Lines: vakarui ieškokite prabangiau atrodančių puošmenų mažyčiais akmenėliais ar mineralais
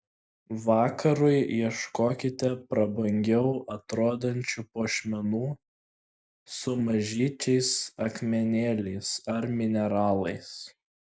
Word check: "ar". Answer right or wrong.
right